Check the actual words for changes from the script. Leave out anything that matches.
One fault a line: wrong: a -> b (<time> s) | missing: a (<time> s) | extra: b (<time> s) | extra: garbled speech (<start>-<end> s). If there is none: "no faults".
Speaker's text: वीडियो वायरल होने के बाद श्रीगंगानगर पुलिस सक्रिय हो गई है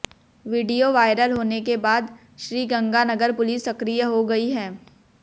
no faults